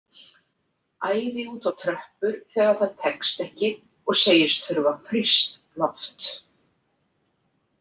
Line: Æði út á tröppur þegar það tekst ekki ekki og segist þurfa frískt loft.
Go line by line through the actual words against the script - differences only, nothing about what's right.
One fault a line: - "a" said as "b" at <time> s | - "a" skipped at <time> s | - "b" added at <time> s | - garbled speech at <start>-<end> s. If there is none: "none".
- "ekki" skipped at 3.7 s